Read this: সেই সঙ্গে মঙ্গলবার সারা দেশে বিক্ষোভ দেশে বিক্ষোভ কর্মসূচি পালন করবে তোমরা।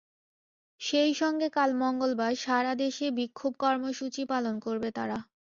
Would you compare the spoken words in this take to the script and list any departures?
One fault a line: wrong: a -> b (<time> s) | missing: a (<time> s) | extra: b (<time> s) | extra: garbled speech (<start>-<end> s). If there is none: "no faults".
extra: কাল (1.5 s)
missing: দেশে বিক্ষোভ (3.5 s)
wrong: তোমরা -> তারা (4.9 s)